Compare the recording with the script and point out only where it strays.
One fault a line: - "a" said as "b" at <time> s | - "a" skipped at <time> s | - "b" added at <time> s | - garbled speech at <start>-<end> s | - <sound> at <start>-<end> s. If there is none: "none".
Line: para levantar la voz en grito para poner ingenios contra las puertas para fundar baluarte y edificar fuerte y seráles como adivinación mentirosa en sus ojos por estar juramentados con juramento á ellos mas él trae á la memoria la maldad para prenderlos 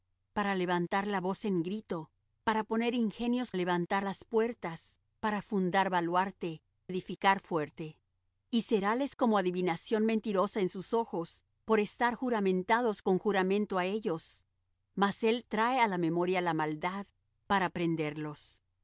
- "contra" said as "levantar" at 3.5 s
- "y" skipped at 6.6 s